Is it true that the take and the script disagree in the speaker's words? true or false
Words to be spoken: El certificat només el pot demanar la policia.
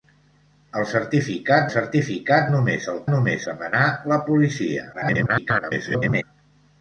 true